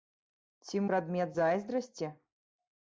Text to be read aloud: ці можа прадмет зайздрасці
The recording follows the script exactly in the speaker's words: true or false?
false